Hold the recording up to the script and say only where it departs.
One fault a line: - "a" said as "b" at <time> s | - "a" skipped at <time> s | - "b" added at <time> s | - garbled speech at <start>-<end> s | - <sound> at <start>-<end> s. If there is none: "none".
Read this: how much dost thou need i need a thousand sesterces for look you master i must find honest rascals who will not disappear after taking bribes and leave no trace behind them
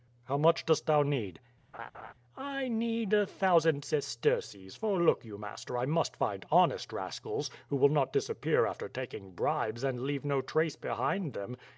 - laugh at 1.7-2.1 s